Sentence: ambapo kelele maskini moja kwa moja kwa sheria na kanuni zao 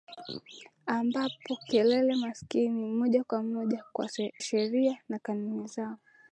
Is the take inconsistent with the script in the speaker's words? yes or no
yes